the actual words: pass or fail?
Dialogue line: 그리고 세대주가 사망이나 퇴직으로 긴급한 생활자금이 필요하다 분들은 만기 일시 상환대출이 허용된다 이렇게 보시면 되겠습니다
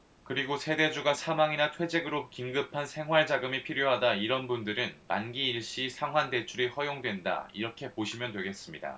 fail